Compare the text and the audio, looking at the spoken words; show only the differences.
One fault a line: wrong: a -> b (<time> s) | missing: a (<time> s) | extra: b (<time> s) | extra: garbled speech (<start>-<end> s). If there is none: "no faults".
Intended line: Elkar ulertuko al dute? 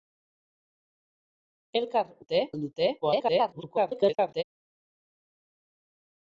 wrong: ulertuko -> dute (2.2 s)
extra: garbled speech (3.0-4.4 s)